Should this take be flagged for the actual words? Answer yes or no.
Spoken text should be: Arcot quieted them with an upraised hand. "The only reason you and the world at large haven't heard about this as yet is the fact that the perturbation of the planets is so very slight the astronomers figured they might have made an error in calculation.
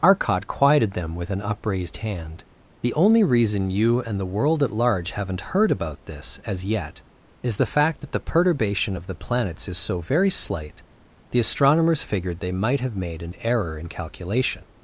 no